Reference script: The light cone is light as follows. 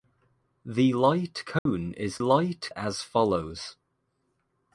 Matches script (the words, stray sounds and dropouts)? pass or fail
fail